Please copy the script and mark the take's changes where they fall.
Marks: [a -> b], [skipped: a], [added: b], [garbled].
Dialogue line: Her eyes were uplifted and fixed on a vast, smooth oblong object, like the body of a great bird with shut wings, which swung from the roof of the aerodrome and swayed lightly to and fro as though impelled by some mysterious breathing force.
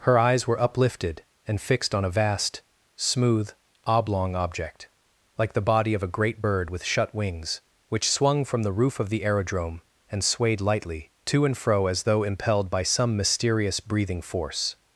Her eyes were uplifted and fixed on a vast, smooth oblong object, like the body of a great bird with shut wings, which swung from the roof of the aerodrome and swayed lightly to and fro as though impelled by some mysterious breathing force.